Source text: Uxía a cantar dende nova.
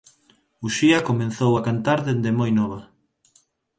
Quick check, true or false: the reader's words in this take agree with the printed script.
false